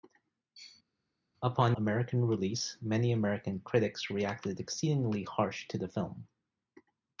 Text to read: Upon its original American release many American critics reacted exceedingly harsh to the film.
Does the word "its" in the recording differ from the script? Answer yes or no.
yes